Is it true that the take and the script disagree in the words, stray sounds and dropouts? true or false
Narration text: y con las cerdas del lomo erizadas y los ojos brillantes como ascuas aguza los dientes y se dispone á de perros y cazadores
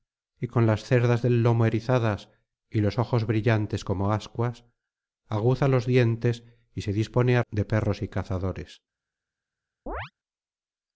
true